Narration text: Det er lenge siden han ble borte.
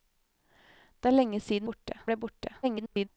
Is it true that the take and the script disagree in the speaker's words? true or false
true